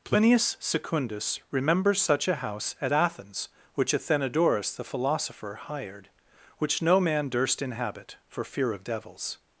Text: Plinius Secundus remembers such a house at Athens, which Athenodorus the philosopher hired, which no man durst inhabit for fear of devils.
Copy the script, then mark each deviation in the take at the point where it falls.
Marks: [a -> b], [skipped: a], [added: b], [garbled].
Plinius Secundus remembers such a house at Athens, which Athenodorus the philosopher hired, which no man durst inhabit for fear of devils.